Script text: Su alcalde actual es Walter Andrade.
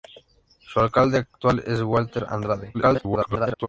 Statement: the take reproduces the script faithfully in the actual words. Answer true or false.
false